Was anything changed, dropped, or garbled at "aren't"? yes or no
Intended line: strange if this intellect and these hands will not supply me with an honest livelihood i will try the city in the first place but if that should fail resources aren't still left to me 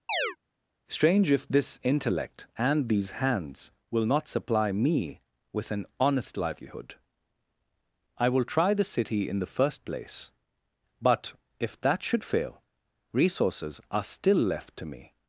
yes